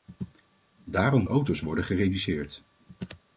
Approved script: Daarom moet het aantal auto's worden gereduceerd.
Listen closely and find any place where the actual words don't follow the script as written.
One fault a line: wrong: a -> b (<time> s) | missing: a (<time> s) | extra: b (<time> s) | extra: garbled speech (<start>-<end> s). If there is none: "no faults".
missing: moet het aantal (1.2 s)